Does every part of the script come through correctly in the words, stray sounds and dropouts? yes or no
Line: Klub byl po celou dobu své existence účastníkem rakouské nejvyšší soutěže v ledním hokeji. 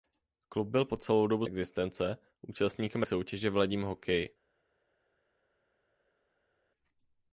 no